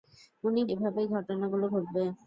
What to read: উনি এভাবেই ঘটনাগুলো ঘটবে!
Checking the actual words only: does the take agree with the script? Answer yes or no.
yes